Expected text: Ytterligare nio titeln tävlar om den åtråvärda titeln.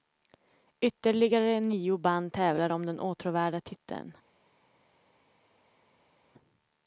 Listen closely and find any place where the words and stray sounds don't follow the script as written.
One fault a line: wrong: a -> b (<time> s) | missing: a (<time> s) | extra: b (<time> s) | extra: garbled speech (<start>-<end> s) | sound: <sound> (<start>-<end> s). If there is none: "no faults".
wrong: titeln -> band (2.0 s)